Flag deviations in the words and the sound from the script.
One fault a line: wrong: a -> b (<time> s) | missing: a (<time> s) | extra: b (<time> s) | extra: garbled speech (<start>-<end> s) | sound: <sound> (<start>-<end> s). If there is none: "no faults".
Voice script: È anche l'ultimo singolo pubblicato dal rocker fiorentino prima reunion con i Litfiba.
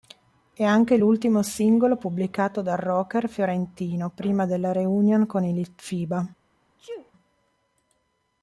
extra: della (4.5 s)
sound: sneeze (6.8-7.1 s)